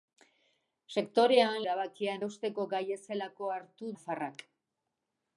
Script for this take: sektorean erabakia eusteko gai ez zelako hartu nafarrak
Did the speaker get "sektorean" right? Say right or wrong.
right